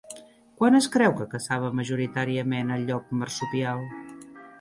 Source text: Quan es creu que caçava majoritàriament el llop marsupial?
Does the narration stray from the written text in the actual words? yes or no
no